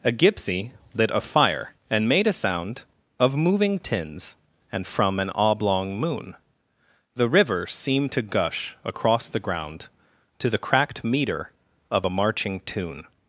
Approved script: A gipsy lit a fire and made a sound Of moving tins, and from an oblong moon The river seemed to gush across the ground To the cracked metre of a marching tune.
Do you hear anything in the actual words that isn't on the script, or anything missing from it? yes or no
no